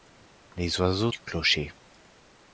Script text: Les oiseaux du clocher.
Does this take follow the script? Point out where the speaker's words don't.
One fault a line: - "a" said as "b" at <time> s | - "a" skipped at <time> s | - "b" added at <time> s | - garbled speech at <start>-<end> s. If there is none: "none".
none